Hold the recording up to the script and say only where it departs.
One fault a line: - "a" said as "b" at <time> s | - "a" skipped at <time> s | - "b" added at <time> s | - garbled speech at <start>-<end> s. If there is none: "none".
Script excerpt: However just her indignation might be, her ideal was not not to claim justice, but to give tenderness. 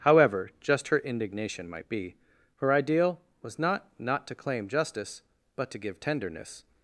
none